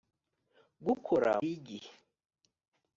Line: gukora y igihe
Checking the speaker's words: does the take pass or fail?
pass